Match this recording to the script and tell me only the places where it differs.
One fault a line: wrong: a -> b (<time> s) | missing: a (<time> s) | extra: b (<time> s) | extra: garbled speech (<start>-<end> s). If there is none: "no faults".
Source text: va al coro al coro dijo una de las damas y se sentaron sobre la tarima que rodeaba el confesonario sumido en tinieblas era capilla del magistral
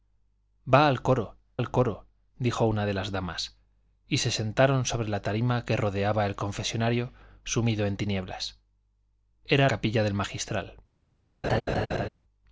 no faults